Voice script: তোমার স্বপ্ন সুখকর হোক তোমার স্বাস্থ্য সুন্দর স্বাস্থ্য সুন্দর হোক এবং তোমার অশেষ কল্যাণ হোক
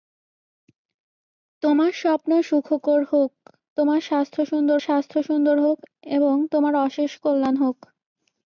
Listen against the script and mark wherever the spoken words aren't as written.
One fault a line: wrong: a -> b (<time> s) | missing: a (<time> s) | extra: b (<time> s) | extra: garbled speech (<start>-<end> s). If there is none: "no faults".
no faults